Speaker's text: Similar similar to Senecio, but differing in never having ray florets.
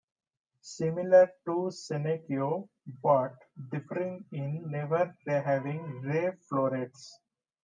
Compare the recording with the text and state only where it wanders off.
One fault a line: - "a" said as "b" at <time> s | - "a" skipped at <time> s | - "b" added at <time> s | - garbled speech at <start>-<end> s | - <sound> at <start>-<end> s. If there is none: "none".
- "similar" skipped at 1.3 s